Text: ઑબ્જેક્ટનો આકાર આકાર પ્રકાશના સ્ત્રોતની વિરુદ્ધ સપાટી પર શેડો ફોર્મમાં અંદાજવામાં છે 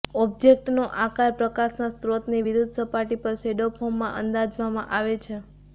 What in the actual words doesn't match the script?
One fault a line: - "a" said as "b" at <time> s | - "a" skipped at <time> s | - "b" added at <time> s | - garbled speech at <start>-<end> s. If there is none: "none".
- "આકાર" skipped at 1.4 s
- "આવે" added at 4.9 s